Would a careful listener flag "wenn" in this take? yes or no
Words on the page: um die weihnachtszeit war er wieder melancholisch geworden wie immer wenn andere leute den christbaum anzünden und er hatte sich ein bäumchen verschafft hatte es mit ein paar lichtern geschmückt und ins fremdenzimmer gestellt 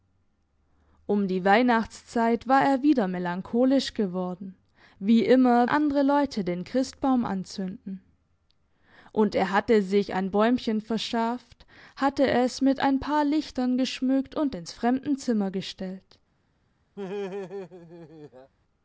yes